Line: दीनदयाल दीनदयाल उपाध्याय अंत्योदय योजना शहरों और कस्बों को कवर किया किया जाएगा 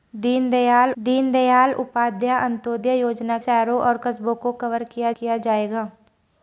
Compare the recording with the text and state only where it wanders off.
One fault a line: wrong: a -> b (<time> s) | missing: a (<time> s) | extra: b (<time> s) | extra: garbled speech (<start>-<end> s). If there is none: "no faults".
no faults